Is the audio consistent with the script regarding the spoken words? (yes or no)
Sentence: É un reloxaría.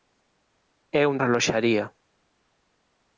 yes